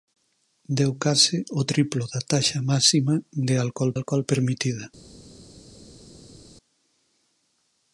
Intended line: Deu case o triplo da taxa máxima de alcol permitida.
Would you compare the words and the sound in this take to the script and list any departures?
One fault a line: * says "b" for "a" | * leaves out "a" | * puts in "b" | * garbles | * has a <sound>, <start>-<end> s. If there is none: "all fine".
* puts in "alcol"